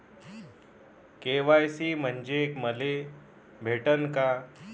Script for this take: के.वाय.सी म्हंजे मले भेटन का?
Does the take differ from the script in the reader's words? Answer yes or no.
no